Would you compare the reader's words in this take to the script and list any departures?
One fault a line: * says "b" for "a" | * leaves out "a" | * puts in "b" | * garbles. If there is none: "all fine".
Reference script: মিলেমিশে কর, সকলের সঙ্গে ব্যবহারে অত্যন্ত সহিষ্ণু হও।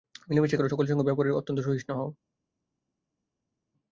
all fine